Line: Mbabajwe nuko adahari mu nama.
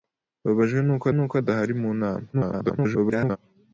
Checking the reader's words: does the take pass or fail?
fail